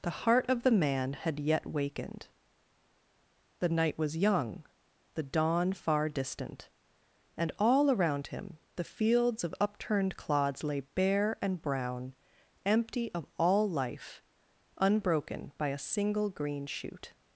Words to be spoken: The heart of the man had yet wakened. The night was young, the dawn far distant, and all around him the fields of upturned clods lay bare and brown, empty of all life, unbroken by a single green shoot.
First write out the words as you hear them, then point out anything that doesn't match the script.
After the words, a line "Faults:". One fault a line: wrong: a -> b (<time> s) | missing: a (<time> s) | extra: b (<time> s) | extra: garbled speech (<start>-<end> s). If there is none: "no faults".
The heart of the man had yet wakened. The night was young, the dawn far distant, and all around him the fields of upturned clods lay bare and brown, empty of all life, unbroken by a single green shoot.
Faults:
no faults